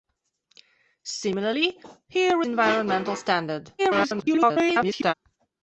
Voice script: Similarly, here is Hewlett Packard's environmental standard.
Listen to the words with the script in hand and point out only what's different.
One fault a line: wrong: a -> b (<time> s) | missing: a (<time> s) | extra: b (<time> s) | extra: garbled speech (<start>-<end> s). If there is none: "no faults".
missing: is Hewlett Packard's (2.4 s)
extra: garbled speech (3.8-5.1 s)